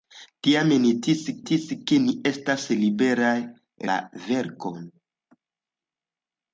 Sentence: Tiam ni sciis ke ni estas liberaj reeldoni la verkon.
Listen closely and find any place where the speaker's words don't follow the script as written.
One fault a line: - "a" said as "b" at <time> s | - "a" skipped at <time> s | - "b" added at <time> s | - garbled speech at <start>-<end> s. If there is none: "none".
- "sciis" added at 1.4 s
- "reeldoni" skipped at 3.3 s